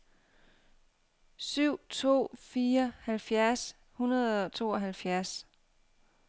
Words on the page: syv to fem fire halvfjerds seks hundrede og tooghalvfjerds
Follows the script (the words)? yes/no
no